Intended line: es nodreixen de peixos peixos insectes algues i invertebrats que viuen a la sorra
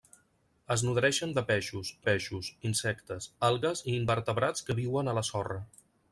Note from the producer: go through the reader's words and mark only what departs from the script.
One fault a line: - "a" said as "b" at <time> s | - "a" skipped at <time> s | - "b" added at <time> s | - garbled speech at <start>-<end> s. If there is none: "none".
none